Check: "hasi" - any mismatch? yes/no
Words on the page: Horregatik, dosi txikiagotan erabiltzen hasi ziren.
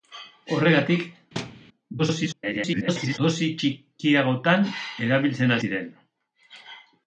yes